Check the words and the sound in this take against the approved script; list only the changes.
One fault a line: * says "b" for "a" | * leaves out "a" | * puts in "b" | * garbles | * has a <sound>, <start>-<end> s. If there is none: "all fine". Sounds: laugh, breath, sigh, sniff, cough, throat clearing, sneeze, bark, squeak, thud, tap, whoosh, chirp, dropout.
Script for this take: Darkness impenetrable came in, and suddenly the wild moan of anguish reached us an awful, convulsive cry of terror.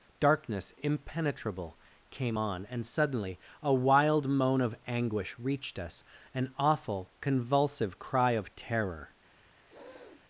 * says "on" for "in"
* says "a" for "the"
* has a sniff, 9.7-10.2 s